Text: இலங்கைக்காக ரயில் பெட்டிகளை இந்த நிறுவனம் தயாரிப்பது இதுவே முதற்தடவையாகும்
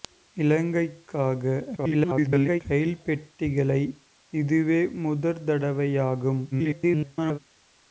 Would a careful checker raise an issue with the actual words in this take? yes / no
yes